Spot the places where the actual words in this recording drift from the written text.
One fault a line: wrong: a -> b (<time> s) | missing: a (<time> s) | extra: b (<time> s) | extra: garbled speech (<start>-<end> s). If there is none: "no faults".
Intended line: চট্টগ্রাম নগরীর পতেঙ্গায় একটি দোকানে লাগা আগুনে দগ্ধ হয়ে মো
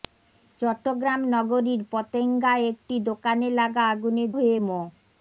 missing: দগ্ধ (4.2 s)